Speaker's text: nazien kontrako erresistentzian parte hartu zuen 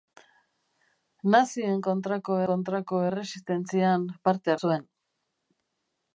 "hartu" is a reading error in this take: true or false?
true